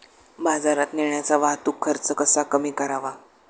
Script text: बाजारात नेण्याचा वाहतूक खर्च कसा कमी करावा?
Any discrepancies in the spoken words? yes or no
no